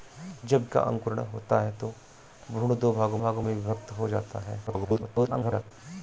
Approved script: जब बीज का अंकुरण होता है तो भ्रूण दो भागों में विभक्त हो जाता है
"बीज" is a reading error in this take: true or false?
true